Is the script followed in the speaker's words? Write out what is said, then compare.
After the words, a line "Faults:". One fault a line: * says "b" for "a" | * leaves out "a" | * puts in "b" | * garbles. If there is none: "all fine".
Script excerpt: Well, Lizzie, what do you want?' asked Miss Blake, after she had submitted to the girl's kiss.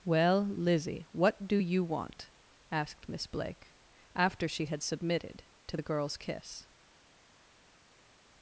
Well, Lizzie, what do you want?' asked Miss Blake, after she had submitted to the girl's kiss.
Faults:
all fine